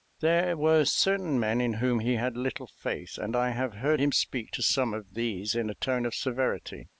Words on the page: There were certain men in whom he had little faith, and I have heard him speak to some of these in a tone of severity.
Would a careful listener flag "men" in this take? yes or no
no